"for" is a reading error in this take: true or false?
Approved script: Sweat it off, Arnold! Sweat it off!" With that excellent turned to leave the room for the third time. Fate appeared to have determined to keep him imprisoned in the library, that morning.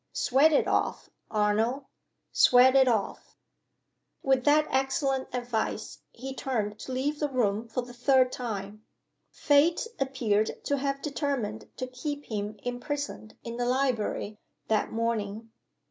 false